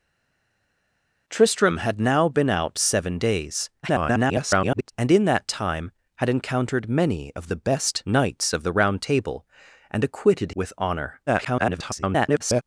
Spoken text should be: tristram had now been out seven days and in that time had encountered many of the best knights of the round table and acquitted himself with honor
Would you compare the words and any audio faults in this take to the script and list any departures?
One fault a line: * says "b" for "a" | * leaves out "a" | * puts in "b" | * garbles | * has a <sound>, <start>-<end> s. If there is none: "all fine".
* garbles
* leaves out "himself"
* garbles